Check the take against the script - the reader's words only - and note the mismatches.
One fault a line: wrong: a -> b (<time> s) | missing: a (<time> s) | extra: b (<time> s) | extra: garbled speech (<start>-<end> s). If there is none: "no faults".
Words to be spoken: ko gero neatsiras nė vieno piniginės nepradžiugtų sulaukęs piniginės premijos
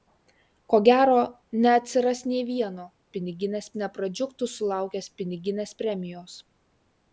no faults